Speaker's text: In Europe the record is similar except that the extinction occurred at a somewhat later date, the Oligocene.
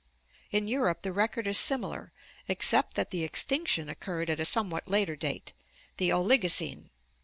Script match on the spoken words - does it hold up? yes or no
yes